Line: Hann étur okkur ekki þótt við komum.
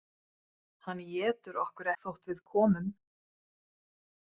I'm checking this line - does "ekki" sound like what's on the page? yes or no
no